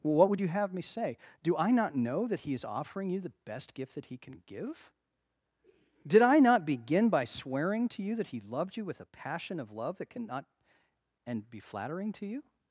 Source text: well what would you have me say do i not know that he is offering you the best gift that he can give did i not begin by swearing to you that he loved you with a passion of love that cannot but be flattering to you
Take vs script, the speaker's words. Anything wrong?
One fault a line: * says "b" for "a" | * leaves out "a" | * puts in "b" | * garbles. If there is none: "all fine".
* says "and" for "but"